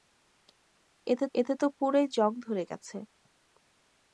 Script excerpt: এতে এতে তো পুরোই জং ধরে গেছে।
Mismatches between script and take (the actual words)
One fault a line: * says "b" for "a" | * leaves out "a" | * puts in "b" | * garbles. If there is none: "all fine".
all fine